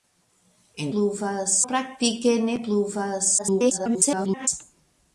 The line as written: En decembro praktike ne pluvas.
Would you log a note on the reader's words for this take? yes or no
yes